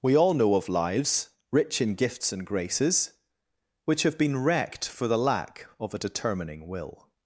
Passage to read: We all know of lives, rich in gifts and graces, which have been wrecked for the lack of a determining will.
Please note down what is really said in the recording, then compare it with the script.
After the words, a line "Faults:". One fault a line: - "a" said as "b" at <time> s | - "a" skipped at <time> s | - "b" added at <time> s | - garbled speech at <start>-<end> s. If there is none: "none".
We all know of lives, rich in gifts and graces, which have been wrecked for the lack of a determining will.
Faults:
none